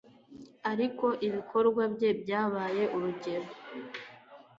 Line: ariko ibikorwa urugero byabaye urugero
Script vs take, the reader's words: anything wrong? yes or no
yes